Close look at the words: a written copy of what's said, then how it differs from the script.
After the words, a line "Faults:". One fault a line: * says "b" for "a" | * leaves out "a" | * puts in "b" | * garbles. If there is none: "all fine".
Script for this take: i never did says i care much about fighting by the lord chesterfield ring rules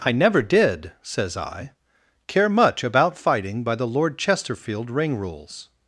i never did says i care much about fighting by the lord chesterfield ring rules
Faults:
all fine